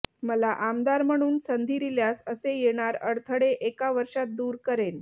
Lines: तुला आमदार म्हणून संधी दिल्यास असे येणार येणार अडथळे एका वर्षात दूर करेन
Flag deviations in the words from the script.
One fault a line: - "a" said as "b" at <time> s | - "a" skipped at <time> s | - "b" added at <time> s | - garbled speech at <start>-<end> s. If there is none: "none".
- "तुला" said as "मला" at 0.2 s
- "येणार" skipped at 3.0 s